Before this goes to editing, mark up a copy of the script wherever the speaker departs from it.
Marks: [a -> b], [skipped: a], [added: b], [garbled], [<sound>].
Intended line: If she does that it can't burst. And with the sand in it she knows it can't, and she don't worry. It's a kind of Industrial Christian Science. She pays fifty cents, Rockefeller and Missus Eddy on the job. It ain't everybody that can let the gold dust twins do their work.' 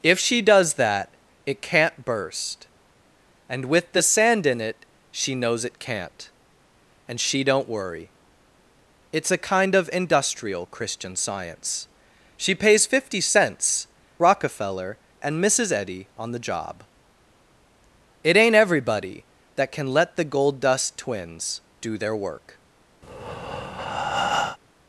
If she does that it can't burst. And with the sand in it she knows it can't, and she don't worry. It's a kind of Industrial Christian Science. She pays fifty cents, Rockefeller and Missus Eddy on the job. It ain't everybody that can let the gold dust twins do their work.' [breath]